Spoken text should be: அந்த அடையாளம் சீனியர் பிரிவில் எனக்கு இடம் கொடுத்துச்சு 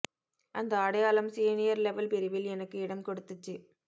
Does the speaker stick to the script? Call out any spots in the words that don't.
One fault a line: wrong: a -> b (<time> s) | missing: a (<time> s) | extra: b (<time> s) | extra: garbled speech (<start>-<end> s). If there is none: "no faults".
extra: லெவல் (1.8 s)